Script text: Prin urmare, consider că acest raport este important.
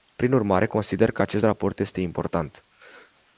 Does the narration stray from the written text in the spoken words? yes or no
no